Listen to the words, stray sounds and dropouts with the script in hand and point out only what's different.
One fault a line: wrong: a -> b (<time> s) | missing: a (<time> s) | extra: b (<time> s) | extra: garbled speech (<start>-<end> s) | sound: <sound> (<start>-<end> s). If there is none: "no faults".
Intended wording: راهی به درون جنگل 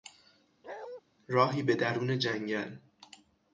sound: bark (0.6-1.0 s)